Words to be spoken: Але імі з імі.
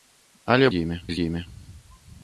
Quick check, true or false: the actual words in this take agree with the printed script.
true